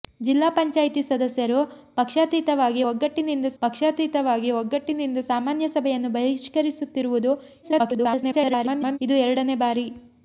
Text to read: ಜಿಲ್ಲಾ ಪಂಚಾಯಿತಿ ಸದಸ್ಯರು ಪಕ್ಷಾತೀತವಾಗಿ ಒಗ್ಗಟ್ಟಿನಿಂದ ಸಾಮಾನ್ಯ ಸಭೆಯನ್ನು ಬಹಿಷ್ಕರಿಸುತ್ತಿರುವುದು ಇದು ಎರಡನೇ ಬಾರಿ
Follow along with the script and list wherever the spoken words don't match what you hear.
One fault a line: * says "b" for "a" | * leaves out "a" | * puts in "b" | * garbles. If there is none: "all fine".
* puts in "ಪಕ್ಷಾತೀತವಾಗಿ ಒಗ್ಗಟ್ಟಿನಿಂದ"
* garbles